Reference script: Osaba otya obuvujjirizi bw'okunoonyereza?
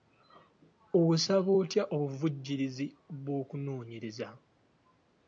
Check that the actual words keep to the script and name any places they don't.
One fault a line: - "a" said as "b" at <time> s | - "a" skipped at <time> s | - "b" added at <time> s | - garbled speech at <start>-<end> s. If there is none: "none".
none